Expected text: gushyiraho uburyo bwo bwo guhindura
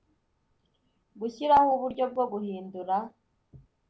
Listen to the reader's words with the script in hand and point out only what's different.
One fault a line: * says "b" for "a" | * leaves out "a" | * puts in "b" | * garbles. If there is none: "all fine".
* leaves out "bwo"